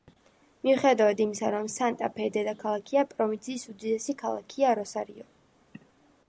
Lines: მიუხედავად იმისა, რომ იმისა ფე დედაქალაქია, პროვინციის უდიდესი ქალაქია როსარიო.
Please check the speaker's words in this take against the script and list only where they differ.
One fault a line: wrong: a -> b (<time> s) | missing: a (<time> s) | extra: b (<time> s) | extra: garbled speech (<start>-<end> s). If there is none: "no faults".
wrong: იმისა -> სანტა (1.7 s)